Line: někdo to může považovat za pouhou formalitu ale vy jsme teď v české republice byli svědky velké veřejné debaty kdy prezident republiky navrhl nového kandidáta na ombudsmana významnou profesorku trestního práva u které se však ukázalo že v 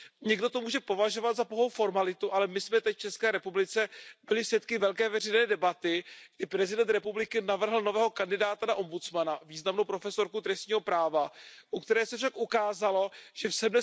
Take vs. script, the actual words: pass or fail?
fail